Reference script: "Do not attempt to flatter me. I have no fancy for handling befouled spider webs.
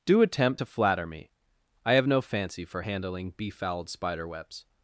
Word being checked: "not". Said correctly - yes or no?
no